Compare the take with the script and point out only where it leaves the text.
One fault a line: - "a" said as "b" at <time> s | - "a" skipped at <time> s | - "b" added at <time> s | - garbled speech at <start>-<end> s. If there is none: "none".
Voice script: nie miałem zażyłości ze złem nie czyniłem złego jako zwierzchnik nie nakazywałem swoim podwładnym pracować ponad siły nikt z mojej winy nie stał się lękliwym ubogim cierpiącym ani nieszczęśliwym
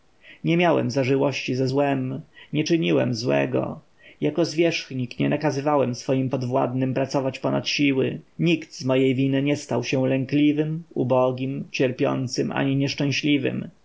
none